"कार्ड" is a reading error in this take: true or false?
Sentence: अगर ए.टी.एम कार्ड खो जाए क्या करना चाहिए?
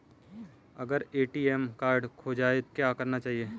false